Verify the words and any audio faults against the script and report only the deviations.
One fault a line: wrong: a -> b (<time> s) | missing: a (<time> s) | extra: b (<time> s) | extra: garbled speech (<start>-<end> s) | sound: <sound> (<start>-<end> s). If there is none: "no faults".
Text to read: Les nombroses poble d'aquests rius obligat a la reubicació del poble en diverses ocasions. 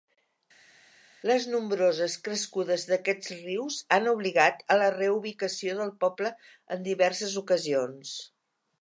wrong: poble -> crescudes (2.3 s)
extra: han (4.0 s)